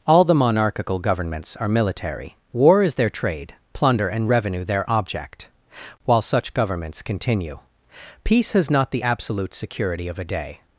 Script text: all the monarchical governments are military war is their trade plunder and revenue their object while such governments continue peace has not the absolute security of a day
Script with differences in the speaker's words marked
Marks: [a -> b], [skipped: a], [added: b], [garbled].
all the monarchical governments are military war is their trade plunder and revenue their object while such governments continue peace has not the absolute security of a day